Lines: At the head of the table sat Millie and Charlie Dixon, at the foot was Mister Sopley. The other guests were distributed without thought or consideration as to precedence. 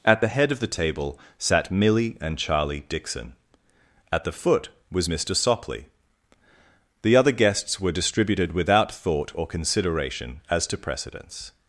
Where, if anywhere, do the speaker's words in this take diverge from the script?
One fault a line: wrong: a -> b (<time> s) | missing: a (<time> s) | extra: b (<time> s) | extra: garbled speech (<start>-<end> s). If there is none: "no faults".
no faults